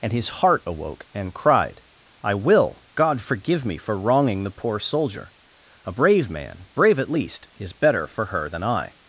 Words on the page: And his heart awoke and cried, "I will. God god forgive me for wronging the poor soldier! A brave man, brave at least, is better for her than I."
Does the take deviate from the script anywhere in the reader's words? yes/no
yes